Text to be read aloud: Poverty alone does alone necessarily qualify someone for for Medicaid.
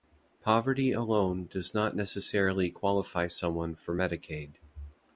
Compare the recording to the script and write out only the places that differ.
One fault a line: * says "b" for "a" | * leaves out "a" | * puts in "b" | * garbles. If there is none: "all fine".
* says "not" for "alone"
* leaves out "for"